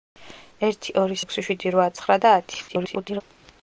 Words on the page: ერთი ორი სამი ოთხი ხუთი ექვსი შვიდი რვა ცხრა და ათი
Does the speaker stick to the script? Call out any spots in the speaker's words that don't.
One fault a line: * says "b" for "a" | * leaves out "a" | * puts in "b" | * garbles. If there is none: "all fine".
* leaves out "სამი ოთხი ხუთი"
* garbles